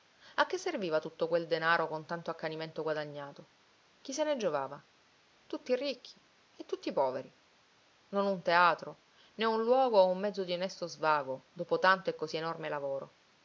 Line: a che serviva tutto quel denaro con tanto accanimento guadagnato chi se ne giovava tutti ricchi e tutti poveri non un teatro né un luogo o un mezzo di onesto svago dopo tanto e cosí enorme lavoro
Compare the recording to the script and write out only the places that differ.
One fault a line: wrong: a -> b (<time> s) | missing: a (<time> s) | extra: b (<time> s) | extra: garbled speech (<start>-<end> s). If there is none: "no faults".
no faults